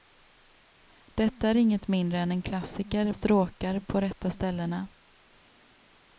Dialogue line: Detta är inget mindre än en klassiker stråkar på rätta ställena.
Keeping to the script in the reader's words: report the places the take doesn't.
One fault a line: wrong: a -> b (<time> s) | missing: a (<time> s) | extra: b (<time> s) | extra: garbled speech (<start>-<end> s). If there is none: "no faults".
no faults